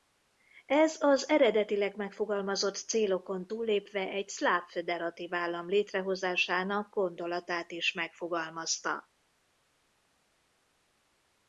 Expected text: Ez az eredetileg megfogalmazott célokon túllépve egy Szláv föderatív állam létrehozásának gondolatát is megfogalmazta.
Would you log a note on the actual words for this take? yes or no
no